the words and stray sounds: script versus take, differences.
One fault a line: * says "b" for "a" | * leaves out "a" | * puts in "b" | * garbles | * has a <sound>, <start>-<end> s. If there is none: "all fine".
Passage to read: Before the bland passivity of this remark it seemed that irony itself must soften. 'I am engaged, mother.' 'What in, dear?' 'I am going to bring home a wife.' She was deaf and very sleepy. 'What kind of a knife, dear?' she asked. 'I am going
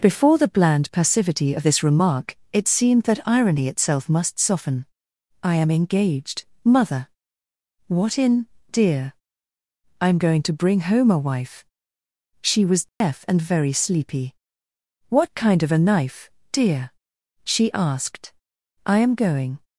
* has a dropout, 12.9-13.0 s